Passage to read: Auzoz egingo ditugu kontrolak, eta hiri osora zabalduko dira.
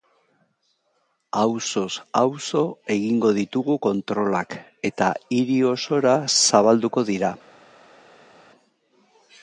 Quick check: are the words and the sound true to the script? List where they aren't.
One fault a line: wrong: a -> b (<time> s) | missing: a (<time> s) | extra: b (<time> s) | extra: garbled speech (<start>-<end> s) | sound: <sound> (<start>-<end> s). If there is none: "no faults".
extra: auzo (2.2 s)